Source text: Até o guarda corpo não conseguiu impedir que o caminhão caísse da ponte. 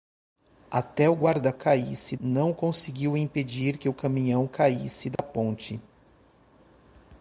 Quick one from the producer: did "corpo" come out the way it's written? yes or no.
no